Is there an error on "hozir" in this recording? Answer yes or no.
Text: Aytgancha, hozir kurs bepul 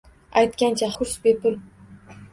yes